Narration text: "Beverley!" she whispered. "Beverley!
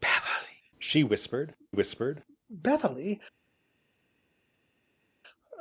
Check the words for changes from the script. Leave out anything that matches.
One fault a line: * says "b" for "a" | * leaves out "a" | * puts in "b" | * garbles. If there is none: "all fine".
* puts in "whispered"